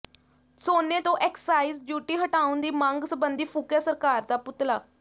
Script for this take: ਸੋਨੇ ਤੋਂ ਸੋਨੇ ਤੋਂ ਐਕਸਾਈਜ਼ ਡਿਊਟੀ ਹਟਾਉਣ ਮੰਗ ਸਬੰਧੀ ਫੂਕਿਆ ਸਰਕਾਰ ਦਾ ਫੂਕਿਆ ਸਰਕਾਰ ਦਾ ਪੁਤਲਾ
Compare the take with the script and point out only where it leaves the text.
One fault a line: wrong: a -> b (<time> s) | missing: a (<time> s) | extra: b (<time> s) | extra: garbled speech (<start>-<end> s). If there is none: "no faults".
missing: ਸੋਨੇ ਤੋਂ (1.2 s)
extra: ਦੀ (2.6 s)
missing: ਫੂਕਿਆ ਸਰਕਾਰ ਦਾ (4.4 s)